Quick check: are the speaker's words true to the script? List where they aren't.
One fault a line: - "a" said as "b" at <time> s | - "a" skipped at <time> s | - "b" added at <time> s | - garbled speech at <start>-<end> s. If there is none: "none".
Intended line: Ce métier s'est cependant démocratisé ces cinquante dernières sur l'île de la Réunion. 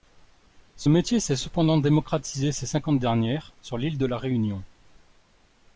none